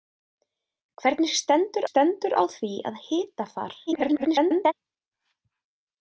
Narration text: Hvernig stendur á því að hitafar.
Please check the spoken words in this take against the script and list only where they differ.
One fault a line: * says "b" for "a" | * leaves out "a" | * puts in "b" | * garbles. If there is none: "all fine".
* puts in "stendur"
* garbles